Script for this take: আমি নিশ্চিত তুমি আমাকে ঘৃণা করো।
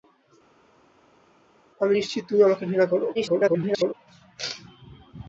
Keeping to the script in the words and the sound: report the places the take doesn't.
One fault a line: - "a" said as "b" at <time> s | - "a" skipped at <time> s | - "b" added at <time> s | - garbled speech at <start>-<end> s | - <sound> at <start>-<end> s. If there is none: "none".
- garbled speech at 3.1-3.9 s